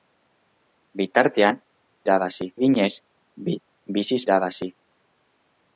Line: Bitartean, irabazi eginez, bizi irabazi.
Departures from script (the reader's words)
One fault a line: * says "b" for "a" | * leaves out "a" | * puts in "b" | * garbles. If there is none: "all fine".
all fine